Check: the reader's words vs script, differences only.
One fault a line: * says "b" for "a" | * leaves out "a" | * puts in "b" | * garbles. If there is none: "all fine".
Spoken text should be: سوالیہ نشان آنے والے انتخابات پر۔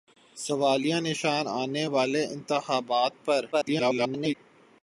* garbles